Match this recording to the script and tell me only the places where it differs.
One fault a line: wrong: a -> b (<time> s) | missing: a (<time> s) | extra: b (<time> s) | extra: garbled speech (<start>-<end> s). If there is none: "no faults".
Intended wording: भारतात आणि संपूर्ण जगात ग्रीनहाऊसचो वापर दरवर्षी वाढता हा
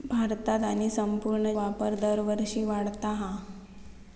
missing: जगात ग्रीनहाऊसचो (1.5 s)